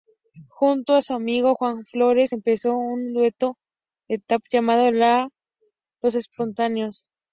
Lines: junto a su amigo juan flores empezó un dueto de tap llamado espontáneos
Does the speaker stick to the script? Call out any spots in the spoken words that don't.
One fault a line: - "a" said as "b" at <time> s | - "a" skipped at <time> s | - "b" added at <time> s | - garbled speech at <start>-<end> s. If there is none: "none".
- "los" added at 6.0 s